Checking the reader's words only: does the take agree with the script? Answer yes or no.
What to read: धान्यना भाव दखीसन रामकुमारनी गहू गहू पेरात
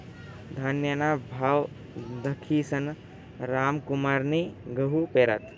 no